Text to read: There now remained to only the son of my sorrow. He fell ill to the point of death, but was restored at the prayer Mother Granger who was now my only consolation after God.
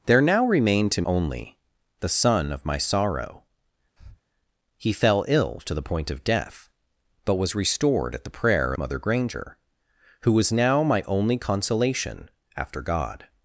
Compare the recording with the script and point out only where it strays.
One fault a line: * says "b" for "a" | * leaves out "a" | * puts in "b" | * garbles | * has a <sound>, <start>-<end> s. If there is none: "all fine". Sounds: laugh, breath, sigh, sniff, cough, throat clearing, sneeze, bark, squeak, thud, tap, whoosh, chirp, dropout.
* has a breath, 4.0-4.2 s